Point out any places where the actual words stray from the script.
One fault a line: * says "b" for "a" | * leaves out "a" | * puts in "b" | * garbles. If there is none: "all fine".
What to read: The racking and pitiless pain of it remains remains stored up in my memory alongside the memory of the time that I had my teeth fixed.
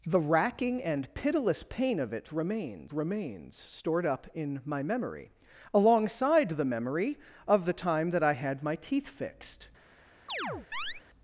all fine